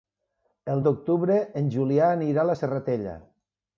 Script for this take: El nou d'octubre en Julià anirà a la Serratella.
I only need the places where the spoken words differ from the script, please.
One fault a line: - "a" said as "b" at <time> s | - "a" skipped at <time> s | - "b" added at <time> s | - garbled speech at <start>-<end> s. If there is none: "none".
- "nou" skipped at 0.8 s